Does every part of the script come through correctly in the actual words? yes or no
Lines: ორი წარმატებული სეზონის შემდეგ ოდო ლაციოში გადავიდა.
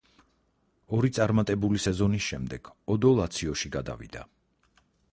yes